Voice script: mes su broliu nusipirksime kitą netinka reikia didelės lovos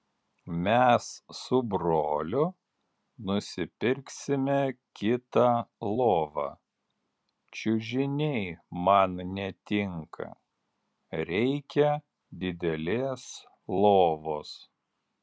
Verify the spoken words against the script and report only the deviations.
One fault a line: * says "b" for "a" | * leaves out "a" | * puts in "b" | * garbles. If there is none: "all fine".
* puts in "lovą čiužiniai man"